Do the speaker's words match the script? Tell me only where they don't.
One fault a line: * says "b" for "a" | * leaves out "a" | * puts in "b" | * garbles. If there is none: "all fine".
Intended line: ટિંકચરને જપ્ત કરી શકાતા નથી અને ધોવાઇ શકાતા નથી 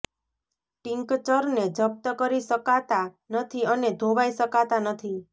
all fine